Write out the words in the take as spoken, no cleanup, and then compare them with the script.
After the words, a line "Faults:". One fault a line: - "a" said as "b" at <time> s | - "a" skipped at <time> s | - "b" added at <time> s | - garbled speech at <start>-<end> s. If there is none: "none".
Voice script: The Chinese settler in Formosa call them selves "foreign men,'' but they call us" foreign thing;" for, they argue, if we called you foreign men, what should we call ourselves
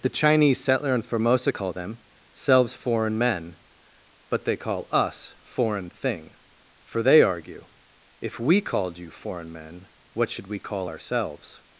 The Chinese settler in Formosa call them selves "foreign men,'' but they call us" foreign thing;" for, they argue, if we called you foreign men, what should we call ourselves
Faults:
none